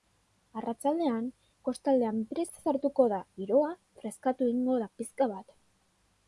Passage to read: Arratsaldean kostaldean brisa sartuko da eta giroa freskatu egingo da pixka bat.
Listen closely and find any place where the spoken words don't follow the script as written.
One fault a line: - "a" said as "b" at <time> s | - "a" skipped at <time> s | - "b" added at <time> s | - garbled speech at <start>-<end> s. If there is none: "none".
- "eta" skipped at 3.2 s